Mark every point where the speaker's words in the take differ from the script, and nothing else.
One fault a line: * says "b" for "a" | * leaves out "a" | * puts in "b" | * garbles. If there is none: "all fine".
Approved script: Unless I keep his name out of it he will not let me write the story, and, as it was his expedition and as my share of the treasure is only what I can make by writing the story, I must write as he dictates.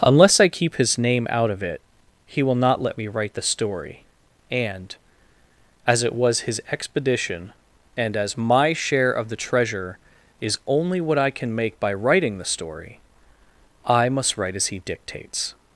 all fine